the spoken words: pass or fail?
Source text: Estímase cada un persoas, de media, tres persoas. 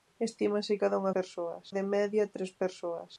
pass